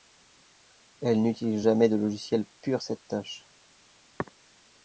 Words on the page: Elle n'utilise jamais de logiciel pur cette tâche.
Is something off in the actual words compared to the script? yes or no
no